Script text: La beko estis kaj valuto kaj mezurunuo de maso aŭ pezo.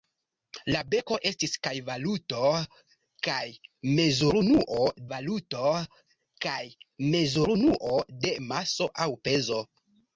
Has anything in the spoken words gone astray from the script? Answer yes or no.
yes